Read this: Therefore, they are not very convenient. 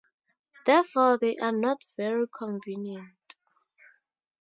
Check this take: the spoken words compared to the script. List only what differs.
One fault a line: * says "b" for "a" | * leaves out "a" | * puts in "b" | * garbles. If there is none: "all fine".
all fine